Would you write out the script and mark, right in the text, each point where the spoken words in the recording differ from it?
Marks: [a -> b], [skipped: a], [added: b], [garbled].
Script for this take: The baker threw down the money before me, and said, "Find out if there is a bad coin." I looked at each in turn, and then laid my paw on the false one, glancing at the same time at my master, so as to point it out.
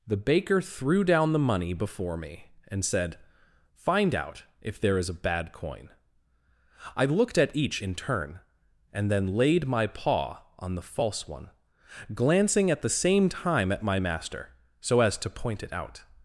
The baker threw down the money before me, and said, "Find out if there is a bad coin." I looked at each in turn, and then laid my paw on the false one, glancing at the same time at my master, so as to point it out.